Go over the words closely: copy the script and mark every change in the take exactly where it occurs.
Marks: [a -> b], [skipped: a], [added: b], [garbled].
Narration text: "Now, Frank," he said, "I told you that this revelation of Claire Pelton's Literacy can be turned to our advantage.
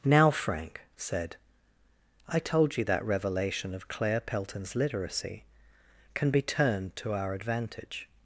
"Now, Frank," [skipped: he] said, "I told you that [skipped: this] revelation of Claire Pelton's Literacy can be turned to our advantage.